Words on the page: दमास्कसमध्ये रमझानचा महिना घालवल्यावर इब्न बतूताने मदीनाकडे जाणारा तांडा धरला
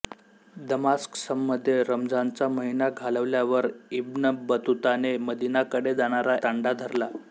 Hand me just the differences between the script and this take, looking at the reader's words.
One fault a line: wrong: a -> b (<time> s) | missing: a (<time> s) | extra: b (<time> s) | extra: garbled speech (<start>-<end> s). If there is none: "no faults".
no faults